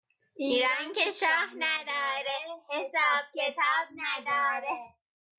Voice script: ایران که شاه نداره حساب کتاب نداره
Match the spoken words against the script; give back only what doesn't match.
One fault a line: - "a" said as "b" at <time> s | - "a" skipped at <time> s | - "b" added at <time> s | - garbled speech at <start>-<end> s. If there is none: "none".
none